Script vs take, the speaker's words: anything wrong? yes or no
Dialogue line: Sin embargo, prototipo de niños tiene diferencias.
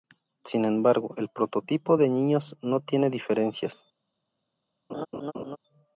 yes